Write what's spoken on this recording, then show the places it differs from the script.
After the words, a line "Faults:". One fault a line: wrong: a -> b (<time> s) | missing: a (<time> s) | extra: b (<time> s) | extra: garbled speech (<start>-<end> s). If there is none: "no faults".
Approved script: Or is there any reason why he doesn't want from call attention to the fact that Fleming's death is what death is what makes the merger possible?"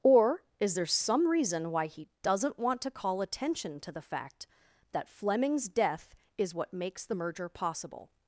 Or is there some reason why he doesn't want to call attention to the fact that Fleming's death is what makes the merger possible?"
Faults:
wrong: any -> some (0.8 s)
wrong: from -> to (2.8 s)
missing: death is what (6.7 s)